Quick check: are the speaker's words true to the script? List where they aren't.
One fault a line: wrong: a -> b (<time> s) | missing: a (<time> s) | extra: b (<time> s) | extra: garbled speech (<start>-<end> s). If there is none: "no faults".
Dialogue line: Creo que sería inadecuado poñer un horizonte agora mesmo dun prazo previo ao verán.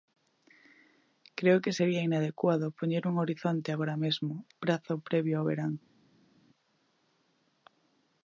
missing: dun (4.3 s)